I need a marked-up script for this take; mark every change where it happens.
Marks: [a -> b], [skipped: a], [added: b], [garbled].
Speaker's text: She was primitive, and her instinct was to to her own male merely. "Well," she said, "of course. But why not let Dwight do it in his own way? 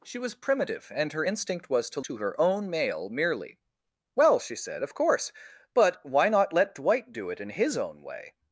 She was primitive, and her instinct was to to her own male merely. "Well," she said, "of course. But why not let Dwight do it in his own way?